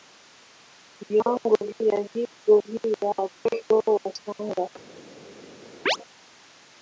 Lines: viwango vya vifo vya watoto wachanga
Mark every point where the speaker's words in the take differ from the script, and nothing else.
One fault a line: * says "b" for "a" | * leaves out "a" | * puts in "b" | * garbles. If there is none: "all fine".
all fine